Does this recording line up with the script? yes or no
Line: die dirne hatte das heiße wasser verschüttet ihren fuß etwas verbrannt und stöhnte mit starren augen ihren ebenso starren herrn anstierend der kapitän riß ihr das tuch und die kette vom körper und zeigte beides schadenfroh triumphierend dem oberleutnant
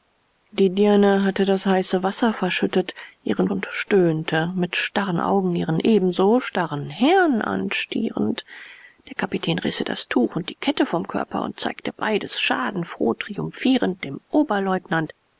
no